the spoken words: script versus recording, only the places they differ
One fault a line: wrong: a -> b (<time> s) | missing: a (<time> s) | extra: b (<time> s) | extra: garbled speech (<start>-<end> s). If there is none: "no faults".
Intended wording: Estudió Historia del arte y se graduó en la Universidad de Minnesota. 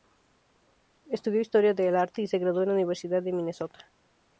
no faults